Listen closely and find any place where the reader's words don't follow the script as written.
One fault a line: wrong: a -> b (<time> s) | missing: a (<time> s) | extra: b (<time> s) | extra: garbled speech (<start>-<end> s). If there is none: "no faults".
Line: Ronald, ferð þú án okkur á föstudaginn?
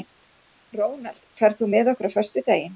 wrong: án -> með (1.8 s)